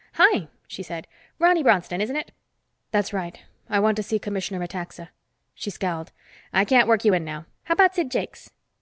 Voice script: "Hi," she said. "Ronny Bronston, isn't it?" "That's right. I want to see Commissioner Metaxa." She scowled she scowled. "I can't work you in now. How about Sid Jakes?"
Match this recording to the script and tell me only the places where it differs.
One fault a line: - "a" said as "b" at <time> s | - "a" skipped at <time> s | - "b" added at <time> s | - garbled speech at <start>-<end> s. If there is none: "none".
- "she scowled" skipped at 6.1 s